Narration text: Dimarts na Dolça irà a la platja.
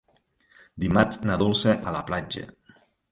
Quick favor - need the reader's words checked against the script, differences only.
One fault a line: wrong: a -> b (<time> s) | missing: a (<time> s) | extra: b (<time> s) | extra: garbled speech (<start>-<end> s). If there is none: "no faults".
missing: irà (1.8 s)